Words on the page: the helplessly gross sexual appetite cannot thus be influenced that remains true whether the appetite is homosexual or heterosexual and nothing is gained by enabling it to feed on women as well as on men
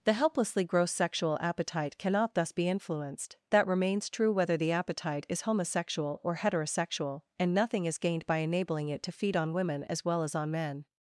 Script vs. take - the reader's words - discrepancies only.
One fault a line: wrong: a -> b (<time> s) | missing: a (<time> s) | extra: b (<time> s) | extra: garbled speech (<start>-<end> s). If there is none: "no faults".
no faults